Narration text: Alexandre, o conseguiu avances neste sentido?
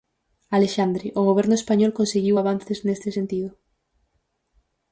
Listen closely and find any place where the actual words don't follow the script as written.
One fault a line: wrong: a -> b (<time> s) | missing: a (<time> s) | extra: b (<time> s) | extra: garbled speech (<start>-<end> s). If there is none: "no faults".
extra: goberno español (1.3 s)